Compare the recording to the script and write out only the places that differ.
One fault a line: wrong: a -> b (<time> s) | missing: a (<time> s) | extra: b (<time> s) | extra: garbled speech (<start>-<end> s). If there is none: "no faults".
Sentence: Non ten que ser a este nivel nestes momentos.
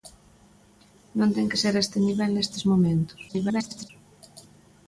extra: garbled speech (3.3-3.9 s)